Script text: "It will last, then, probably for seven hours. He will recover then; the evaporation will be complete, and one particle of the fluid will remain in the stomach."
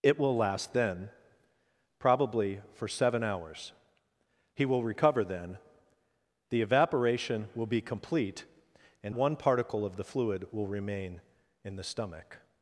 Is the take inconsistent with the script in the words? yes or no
no